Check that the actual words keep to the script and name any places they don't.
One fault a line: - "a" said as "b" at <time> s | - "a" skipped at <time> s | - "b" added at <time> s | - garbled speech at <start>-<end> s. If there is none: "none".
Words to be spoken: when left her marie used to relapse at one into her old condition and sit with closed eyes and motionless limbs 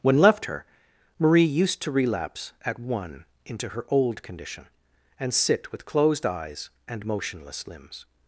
none